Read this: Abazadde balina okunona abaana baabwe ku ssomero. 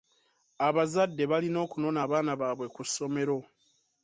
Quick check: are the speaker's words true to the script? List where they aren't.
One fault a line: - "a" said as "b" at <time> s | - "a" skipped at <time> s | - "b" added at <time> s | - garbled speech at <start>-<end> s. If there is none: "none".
none